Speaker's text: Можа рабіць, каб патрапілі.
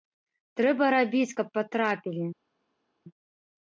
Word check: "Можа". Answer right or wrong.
wrong